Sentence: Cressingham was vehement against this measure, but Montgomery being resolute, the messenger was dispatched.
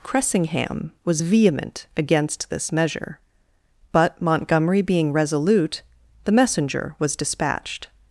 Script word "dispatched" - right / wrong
right